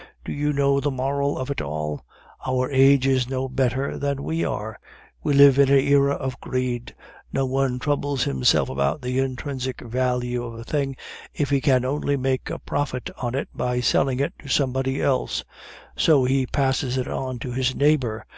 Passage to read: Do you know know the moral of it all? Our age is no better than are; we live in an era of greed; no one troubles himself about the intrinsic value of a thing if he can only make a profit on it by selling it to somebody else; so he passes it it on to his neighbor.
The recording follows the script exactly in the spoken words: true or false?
false